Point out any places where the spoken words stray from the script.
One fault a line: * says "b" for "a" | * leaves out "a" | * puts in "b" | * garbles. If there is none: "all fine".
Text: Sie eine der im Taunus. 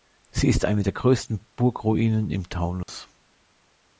* puts in "ist"
* puts in "größten Burgruinen"